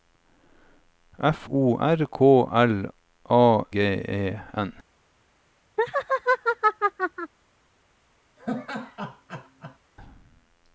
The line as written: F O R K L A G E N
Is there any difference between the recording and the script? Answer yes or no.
no